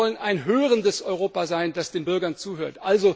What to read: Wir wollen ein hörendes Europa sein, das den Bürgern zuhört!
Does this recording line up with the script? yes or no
yes